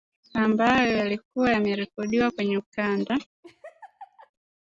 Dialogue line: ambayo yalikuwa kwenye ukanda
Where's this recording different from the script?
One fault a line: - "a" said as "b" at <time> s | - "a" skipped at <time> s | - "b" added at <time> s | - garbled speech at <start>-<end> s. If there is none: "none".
- "yamerekodiwa" added at 1.5 s